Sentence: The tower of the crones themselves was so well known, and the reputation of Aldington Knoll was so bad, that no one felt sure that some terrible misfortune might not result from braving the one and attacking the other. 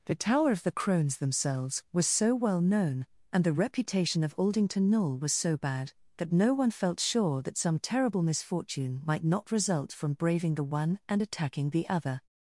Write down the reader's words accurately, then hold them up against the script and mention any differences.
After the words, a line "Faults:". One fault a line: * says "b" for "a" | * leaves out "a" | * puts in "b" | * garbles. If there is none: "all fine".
The tower of the crones themselves was so well known, and the reputation of Aldington Knoll was so bad, that no one felt sure that some terrible misfortune might not result from braving the one and attacking the other.
Faults:
all fine